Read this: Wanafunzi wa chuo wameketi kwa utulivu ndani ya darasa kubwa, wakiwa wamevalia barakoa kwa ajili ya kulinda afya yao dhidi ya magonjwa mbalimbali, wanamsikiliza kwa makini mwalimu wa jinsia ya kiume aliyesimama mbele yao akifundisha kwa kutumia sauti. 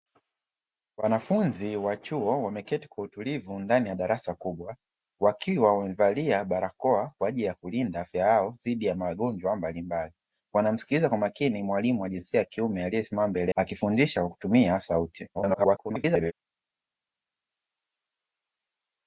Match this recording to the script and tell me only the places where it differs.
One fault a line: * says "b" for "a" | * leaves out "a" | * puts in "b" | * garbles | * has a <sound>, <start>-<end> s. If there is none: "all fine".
* leaves out "yao"
* garbles